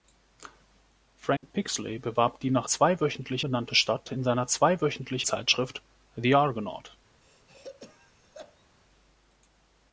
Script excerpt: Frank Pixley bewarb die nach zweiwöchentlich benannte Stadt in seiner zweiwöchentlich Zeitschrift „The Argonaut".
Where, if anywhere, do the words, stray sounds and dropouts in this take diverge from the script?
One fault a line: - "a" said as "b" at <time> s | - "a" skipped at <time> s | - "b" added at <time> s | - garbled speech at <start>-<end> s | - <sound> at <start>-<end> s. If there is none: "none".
- dropout at 1.4-1.4 s
- throat clearing at 7.2-8.7 s